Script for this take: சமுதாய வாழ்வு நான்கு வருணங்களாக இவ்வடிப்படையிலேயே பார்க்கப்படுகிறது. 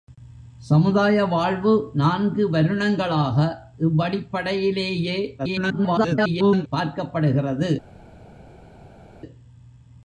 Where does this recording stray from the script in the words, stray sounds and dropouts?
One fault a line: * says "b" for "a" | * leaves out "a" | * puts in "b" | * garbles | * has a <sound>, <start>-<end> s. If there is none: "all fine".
* garbles